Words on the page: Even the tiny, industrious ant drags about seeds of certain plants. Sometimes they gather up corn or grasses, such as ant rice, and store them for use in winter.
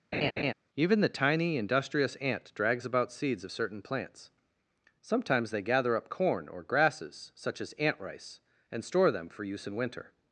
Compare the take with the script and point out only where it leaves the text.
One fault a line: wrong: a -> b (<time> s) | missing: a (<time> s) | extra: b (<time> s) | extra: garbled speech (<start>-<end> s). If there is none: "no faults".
no faults